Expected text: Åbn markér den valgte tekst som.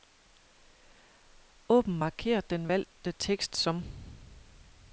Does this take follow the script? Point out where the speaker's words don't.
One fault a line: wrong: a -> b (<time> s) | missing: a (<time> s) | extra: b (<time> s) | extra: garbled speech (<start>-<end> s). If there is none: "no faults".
no faults